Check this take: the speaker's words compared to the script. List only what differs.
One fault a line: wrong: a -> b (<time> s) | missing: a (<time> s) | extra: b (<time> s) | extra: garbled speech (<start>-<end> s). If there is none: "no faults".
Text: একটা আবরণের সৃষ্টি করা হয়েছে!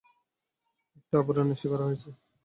missing: সৃষ্টি (1.6 s)